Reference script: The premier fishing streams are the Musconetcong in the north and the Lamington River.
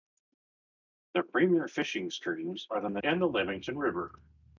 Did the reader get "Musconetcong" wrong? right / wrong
wrong